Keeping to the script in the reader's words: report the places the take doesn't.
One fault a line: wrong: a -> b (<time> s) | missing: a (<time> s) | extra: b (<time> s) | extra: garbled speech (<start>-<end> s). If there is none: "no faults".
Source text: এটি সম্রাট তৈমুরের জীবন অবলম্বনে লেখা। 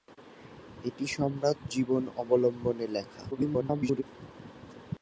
missing: তৈমুরের (1.6 s)
extra: garbled speech (3.3-4.0 s)